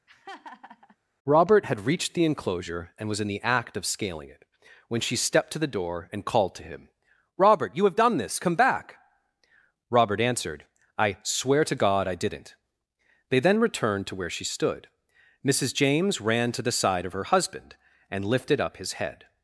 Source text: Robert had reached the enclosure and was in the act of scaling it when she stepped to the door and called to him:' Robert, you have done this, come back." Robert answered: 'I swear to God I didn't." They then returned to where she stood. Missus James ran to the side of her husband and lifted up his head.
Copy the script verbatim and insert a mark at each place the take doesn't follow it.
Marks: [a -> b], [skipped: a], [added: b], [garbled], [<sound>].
[laugh] Robert had reached the enclosure and was in the act of scaling it when she stepped to the door and called to him:' Robert, you have done this, come back." Robert answered: 'I swear to God I didn't." They then returned to where she stood. Missus James ran to the side of her husband and lifted up his head.